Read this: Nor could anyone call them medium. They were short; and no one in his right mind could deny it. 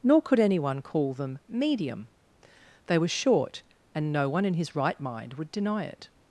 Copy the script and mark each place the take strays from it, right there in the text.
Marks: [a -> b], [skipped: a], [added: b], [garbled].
Nor could anyone call them medium. They were short; and no one in his right mind [could -> would] deny it.